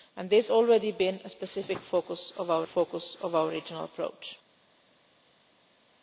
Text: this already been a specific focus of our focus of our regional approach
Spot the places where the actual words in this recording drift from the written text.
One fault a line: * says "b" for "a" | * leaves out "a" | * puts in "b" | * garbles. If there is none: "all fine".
all fine